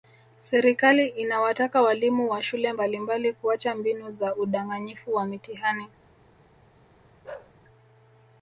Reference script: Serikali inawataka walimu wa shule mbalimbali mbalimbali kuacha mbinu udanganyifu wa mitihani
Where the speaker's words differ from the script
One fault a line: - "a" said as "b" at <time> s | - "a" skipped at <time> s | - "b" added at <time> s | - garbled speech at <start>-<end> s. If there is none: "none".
- "mbalimbali" skipped at 3.3 s
- "za" added at 4.1 s